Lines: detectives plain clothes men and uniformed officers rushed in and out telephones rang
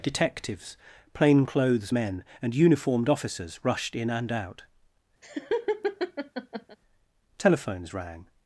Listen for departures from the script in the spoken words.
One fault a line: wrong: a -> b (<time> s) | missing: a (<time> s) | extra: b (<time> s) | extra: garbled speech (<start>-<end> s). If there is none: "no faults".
no faults